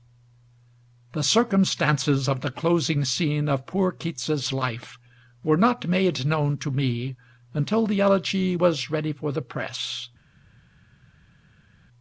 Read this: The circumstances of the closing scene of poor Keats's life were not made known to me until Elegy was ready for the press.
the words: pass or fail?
fail